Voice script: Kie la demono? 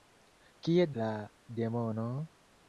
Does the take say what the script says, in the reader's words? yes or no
yes